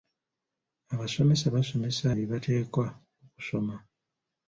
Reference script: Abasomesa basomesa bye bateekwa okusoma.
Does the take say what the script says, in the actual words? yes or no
yes